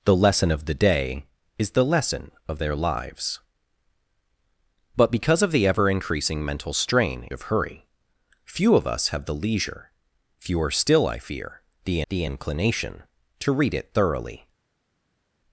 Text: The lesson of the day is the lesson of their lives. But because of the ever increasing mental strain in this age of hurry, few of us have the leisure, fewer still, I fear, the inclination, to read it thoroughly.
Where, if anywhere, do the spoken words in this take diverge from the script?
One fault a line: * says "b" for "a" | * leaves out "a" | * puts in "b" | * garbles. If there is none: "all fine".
* leaves out "in this age"
* puts in "the"